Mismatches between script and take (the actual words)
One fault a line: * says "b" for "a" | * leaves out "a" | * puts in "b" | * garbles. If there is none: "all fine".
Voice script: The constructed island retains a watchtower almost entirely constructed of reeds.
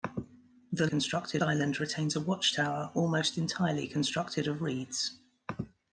all fine